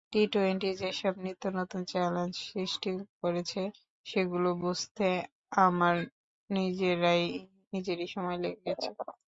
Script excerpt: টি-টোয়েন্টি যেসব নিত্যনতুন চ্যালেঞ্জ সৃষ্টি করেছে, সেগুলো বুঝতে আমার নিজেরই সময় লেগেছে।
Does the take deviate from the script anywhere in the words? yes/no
no